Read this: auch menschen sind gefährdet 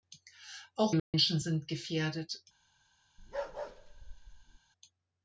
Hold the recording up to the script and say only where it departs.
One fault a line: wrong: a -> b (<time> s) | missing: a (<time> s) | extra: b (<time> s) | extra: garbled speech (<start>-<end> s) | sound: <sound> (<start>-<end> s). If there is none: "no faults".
sound: dropout (1.0-1.1 s)
sound: bark (3.2-4.6 s)